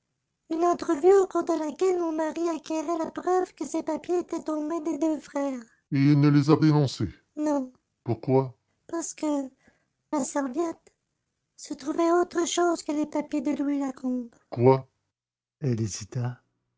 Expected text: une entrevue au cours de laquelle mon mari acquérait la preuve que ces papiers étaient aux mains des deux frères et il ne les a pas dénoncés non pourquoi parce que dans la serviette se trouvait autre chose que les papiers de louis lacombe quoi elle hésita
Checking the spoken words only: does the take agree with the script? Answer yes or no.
no